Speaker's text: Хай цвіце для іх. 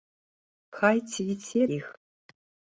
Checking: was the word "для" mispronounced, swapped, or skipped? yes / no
yes